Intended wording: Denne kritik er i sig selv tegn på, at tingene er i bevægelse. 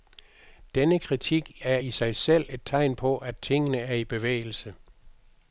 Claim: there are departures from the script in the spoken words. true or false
true